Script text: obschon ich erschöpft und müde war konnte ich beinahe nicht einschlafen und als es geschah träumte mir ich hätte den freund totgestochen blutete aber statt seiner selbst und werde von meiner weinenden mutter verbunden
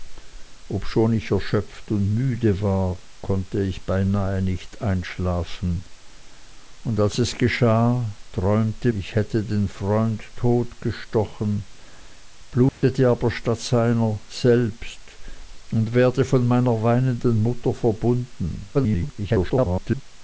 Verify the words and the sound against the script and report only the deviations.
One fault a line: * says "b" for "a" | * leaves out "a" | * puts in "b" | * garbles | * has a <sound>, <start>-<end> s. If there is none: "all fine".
* leaves out "mir"
* has a dropout, 12.7-12.8 s
* garbles